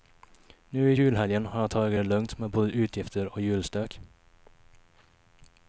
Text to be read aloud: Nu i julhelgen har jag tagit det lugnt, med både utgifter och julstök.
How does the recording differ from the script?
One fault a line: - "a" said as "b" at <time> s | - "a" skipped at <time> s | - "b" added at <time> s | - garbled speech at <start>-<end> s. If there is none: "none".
none